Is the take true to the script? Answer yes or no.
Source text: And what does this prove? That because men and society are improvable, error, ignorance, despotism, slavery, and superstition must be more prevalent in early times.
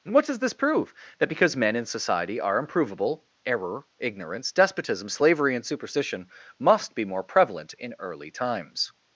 no